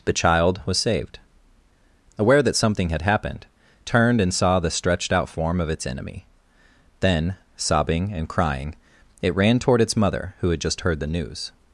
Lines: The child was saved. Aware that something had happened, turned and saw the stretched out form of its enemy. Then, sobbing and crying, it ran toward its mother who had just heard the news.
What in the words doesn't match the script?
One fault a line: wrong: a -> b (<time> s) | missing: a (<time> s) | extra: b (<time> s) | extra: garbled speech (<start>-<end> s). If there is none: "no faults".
no faults